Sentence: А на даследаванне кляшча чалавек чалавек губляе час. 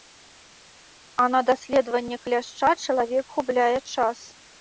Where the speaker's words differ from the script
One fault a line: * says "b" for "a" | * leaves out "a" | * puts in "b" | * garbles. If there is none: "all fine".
* leaves out "чалавек"